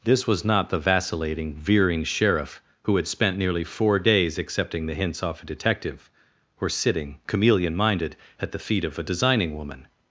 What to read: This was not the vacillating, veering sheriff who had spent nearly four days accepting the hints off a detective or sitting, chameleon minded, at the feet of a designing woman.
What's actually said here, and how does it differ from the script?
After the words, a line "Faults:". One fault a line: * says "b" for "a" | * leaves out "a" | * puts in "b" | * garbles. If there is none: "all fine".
This was not the vacillating, veering sheriff who had spent nearly four days accepting the hints off a detective or sitting, chameleon minded, at the feet of a designing woman.
Faults:
all fine